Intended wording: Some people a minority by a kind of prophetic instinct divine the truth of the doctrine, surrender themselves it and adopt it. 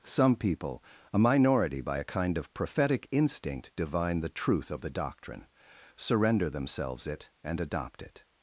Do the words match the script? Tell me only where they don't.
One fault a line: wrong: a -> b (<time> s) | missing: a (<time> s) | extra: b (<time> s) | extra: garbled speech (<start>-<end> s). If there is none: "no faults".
no faults